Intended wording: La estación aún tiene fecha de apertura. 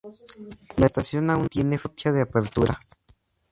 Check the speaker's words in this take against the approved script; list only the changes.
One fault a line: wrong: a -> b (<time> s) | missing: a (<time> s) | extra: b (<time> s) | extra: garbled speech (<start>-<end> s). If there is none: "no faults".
no faults